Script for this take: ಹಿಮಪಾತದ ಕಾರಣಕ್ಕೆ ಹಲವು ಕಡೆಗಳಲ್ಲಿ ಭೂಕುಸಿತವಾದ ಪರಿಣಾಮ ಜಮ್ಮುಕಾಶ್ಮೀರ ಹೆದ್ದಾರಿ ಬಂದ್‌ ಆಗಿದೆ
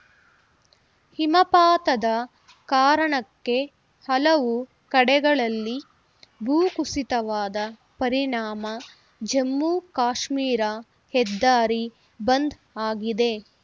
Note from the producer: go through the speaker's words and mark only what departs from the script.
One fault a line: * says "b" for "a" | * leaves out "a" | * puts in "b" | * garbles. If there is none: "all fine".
all fine